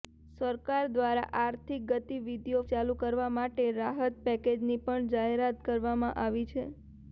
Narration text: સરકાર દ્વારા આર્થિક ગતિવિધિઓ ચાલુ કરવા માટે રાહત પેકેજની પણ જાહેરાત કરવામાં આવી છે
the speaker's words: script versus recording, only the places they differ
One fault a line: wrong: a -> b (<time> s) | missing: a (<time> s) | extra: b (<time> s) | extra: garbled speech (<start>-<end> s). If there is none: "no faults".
no faults